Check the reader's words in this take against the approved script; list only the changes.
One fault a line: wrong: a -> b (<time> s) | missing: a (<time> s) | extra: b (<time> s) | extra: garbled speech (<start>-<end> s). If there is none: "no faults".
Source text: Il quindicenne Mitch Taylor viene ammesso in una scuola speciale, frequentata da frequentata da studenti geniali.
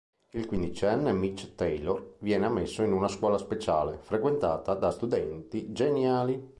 missing: frequentata da (4.9 s)